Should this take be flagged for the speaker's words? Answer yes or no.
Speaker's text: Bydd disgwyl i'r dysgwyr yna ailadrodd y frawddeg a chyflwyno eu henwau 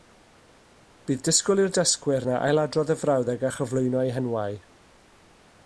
no